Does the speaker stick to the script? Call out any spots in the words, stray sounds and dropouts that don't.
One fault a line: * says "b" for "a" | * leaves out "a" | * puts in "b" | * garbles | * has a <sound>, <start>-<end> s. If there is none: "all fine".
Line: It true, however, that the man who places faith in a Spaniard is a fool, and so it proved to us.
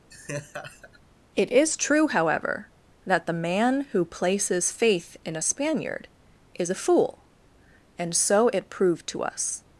* has a laugh, 0.1-1.0 s
* puts in "is"